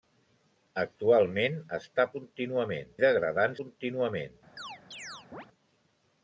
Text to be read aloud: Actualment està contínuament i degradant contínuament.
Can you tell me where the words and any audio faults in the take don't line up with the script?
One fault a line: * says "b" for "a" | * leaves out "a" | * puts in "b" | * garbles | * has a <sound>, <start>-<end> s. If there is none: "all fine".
* has a chirp, 4.6-5.5 s